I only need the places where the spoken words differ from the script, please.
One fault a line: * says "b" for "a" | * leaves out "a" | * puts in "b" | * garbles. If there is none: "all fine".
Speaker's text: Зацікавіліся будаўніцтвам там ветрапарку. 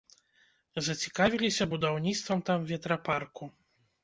all fine